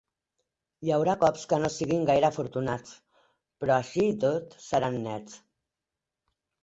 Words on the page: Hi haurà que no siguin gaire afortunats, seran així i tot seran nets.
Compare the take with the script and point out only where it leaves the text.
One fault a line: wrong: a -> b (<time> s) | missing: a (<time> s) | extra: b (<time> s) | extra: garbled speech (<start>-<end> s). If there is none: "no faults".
extra: cops (1.2 s)
wrong: seran -> però (3.6 s)